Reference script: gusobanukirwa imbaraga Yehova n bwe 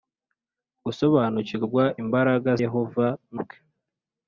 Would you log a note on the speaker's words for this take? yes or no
no